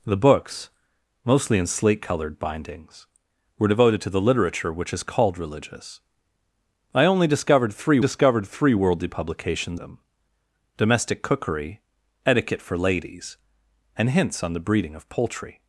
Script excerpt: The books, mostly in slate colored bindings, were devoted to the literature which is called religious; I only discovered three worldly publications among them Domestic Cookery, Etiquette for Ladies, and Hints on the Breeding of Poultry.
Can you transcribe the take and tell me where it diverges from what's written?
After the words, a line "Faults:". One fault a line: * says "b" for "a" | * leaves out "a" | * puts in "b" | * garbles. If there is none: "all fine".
The books, mostly in slate colored bindings, were devoted to the literature which is called religious; I only discovered three discovered three worldly publications them Domestic Cookery, Etiquette for Ladies, and Hints on the Breeding of Poultry.
Faults:
* puts in "discovered three"
* leaves out "among"